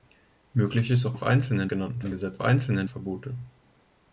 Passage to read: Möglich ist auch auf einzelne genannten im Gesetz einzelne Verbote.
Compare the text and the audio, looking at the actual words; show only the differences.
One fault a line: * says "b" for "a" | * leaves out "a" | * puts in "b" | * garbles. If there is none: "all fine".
all fine